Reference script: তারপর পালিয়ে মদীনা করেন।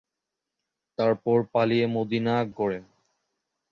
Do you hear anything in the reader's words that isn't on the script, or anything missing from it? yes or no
no